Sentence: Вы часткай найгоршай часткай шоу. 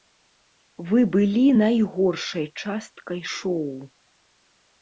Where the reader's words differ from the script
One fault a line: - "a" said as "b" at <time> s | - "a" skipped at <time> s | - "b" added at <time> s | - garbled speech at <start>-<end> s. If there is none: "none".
- "часткай" said as "былі" at 1.1 s